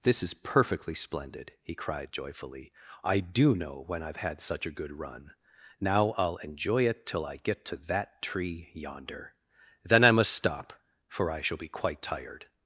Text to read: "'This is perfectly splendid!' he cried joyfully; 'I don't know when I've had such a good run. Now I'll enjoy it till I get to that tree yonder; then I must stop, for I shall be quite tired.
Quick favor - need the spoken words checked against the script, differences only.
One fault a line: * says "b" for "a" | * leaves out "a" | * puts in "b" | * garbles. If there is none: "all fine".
* says "do" for "don't"